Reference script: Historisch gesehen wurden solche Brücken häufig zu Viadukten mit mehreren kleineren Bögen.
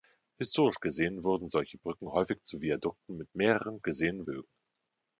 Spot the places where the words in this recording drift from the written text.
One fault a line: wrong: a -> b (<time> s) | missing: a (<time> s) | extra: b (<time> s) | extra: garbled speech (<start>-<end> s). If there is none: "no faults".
wrong: kleineren -> gesehen (3.8 s)